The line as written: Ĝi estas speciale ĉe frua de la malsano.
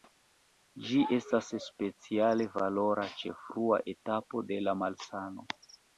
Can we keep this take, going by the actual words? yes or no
no